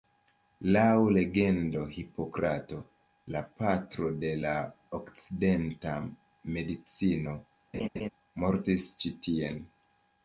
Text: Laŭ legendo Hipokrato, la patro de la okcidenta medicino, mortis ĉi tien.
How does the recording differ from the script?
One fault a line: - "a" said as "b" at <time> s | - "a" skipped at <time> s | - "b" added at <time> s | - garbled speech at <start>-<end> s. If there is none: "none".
none